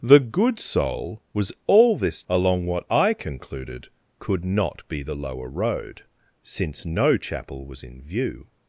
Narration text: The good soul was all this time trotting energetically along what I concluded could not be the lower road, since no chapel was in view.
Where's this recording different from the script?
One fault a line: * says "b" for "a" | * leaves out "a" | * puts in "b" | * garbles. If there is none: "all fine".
* leaves out "time trotting energetically"